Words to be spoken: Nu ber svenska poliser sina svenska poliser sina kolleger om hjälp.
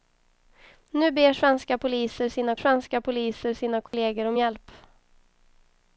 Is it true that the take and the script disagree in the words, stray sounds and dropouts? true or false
true